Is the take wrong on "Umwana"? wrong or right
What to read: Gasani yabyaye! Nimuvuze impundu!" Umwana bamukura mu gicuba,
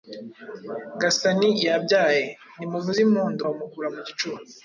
wrong